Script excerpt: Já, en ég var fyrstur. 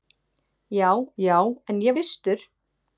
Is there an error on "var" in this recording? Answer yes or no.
yes